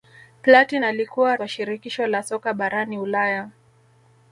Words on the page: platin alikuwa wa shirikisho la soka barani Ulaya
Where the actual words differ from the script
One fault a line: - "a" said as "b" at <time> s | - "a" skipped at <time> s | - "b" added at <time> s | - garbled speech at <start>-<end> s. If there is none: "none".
none